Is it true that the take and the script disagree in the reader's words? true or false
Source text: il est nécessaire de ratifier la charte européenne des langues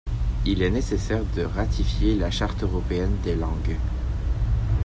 false